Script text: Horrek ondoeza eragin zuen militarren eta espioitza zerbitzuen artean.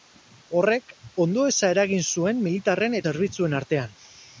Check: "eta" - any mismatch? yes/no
yes